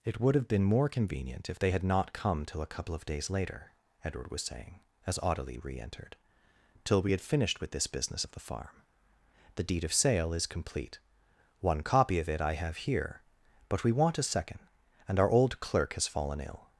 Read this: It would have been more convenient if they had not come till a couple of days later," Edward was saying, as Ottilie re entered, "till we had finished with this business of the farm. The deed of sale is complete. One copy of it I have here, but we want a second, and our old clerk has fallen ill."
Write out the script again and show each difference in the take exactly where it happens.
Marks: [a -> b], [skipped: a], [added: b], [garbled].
It would have been more convenient if they had not come till a couple of days later," Edward was saying, as Ottilie re entered, "till we had finished with this business of the farm. The deed of sale is complete. One copy of it I have here, but we want a second, and our old clerk has fallen ill."